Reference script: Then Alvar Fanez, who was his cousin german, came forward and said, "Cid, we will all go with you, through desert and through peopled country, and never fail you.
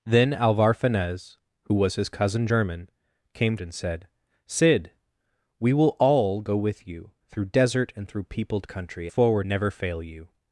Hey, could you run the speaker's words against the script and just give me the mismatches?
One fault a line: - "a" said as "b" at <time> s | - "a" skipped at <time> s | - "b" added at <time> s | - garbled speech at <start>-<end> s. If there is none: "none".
- "forward" skipped at 3.6 s
- "and" said as "forward" at 9.1 s